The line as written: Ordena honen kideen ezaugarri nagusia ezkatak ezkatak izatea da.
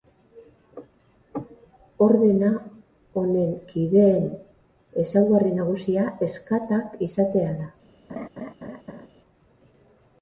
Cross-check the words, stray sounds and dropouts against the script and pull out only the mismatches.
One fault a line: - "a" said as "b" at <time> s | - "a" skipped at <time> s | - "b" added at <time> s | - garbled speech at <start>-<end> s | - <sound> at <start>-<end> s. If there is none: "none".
- "ezkatak" skipped at 7.0 s
- laugh at 8.1-9.1 s